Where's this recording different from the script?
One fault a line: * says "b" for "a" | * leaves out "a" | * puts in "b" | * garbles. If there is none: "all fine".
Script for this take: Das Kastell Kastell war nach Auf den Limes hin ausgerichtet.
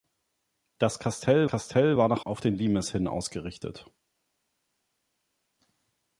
all fine